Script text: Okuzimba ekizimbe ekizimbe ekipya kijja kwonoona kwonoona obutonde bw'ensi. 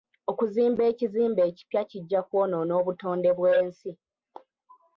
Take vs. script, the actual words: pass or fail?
fail